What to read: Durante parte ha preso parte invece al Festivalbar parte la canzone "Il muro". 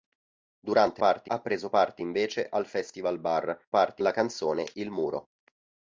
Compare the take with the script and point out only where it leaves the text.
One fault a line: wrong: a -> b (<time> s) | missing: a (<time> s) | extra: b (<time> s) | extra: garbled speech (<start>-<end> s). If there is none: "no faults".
no faults